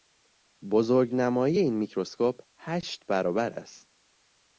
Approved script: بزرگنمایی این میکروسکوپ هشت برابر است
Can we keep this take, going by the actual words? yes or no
yes